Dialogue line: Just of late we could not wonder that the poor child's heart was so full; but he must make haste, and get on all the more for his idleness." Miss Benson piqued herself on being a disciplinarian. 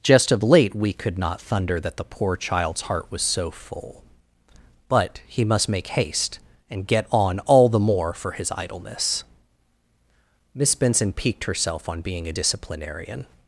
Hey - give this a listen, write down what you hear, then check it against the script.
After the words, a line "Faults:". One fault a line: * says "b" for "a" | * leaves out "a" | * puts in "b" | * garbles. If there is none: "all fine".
Just of late we could not thunder that the poor child's heart was so full; but he must make haste, and get on all the more for his idleness." Miss Benson piqued herself on being a disciplinarian.
Faults:
* says "thunder" for "wonder"